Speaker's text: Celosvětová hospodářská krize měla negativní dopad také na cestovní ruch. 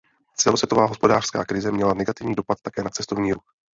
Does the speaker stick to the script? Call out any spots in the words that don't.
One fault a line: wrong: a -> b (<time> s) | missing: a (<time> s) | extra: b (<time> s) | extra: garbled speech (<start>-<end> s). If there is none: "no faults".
no faults